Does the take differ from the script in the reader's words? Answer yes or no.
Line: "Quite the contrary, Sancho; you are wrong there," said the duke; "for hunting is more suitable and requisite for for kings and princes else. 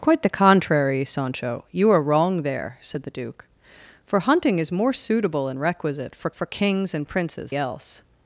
no